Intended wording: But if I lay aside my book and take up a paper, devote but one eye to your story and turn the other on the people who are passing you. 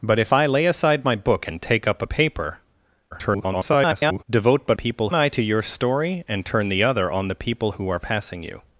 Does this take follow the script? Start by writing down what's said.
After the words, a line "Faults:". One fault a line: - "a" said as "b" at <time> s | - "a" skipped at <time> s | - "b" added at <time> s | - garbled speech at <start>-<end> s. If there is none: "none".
But if I lay aside my book and take up a paper, [garbled] devote but people eye to your story and turn the other on the people who are passing you.
Faults:
- garbled speech at 3.1-4.2 s
- "one" said as "people" at 4.7 s